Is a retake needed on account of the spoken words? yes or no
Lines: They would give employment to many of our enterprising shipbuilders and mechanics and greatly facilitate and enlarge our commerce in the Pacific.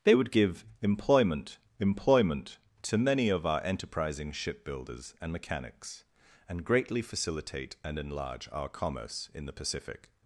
yes